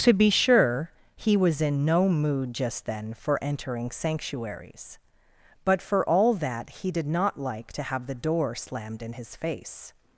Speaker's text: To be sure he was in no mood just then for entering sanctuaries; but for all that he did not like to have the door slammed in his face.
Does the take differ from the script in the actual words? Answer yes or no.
no